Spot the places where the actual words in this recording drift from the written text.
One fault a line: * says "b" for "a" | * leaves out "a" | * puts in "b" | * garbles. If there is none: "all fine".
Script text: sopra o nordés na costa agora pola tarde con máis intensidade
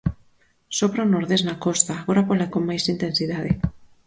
* leaves out "tarde"